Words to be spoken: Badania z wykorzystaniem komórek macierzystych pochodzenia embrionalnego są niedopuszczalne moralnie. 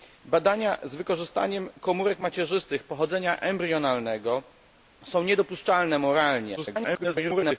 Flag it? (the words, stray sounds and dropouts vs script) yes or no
yes